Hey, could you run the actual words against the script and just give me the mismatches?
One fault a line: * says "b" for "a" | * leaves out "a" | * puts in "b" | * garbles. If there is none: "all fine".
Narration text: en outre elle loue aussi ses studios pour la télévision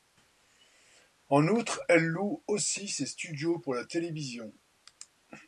all fine